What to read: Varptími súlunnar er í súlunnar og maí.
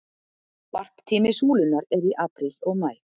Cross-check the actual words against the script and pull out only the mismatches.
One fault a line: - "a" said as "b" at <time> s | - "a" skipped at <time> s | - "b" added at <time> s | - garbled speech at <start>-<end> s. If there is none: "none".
- "súlunnar" said as "apríl" at 2.3 s